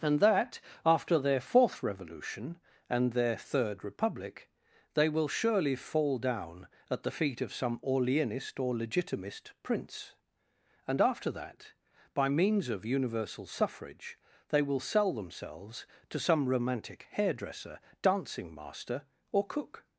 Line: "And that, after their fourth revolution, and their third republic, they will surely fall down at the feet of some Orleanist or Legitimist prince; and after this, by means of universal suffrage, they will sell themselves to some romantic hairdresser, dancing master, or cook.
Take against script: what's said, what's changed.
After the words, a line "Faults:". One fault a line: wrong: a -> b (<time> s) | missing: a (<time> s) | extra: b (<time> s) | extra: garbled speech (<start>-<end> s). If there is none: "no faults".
"And that, after their fourth revolution, and their third republic, they will surely fall down at the feet of some Orleanist or Legitimist prince; and after that, by means of universal suffrage, they will sell themselves to some romantic hairdresser, dancing master, or cook.
Faults:
wrong: this -> that (11.3 s)